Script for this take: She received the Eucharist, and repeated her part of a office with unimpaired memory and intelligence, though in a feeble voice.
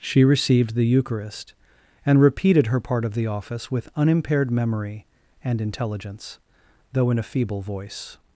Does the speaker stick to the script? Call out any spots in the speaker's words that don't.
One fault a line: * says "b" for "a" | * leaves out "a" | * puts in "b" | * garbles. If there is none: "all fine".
* says "the" for "a"